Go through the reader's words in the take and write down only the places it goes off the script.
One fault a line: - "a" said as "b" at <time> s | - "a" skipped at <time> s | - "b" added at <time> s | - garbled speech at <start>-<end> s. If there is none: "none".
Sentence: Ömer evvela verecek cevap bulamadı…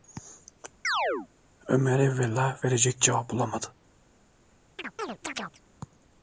none